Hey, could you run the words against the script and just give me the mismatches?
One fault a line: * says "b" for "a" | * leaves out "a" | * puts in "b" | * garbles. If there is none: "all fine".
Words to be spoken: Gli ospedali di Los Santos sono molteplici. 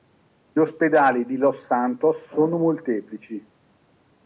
all fine